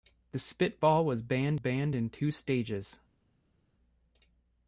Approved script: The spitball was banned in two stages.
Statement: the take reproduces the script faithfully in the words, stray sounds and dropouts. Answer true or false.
false